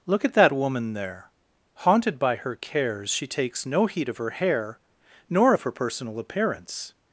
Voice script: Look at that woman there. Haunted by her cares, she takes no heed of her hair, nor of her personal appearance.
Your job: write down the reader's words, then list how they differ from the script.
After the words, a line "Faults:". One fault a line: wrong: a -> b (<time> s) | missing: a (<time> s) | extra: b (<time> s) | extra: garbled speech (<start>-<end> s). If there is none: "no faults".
Look at that woman there. Haunted by her cares, she takes no heed of her hair, nor of her personal appearance.
Faults:
no faults